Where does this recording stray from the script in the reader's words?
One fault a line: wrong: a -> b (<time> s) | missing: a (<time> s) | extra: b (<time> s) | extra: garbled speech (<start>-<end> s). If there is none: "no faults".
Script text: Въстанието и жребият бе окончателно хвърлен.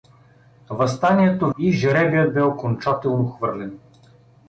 no faults